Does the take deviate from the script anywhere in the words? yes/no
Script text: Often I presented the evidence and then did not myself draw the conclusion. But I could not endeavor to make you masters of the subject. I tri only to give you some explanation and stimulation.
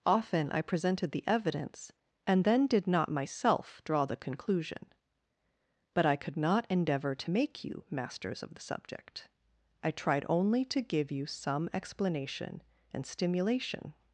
yes